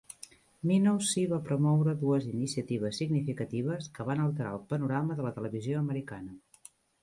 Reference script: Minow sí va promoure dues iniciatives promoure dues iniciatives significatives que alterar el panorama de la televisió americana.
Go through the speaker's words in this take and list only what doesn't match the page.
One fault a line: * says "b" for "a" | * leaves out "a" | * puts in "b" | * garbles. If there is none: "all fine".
* leaves out "promoure dues iniciatives"
* puts in "van"